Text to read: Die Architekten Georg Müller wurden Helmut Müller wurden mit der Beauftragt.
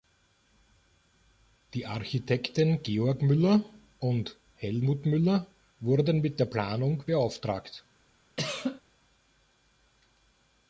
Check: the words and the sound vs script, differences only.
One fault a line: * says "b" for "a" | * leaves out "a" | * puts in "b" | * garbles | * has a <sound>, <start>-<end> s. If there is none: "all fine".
* says "und" for "wurden"
* puts in "Planung"
* has a cough, 8.4-8.8 s